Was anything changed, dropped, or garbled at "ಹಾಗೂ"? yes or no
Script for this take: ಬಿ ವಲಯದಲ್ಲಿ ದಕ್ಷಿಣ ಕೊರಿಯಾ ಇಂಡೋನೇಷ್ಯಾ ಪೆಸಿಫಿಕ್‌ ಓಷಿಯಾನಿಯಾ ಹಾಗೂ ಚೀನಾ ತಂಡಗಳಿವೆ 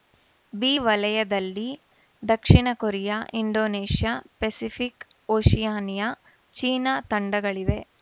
yes